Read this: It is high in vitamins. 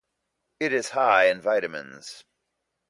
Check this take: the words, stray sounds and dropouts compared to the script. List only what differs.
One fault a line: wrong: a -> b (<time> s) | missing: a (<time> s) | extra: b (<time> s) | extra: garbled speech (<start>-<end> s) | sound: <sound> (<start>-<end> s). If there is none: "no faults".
no faults